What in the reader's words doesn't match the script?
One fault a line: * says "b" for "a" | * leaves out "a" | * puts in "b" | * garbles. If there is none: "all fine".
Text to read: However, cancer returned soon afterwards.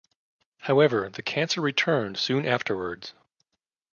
* puts in "the"